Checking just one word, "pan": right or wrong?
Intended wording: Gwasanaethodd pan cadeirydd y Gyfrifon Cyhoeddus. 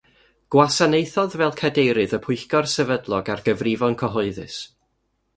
wrong